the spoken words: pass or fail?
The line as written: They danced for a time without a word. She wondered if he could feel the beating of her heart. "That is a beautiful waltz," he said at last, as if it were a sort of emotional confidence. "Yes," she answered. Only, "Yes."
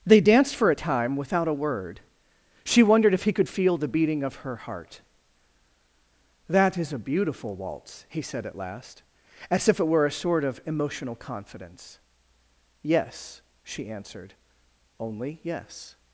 pass